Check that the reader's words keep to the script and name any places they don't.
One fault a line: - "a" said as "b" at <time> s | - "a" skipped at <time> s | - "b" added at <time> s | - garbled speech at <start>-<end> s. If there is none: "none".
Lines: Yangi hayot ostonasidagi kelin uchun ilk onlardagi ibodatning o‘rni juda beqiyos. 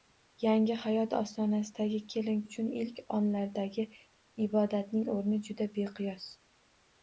none